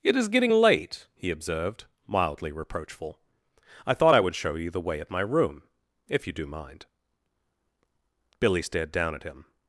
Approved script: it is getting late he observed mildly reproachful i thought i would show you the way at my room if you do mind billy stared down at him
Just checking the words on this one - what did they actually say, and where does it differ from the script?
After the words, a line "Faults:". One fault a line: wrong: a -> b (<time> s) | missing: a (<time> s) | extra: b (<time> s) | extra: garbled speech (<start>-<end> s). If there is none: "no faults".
it is getting late he observed mildly reproachful i thought i would show you the way at my room if you do mind billy stared down at him
Faults:
no faults